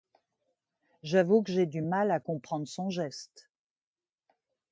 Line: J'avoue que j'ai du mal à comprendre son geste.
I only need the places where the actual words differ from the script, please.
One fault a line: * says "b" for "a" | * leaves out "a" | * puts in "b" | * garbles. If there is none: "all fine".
all fine